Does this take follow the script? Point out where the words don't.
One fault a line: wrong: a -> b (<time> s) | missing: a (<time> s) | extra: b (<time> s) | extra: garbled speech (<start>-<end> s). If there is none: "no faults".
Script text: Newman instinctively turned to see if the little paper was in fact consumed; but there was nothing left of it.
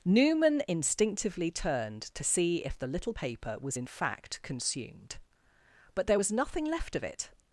no faults